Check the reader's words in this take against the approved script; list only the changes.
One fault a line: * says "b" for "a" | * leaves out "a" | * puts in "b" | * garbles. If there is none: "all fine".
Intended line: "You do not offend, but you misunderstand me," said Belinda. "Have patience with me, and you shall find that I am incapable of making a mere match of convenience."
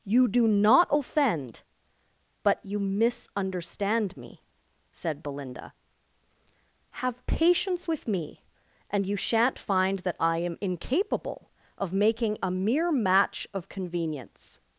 * says "shan't" for "shall"